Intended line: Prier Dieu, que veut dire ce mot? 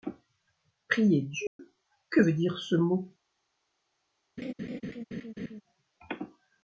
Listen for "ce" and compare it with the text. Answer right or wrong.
right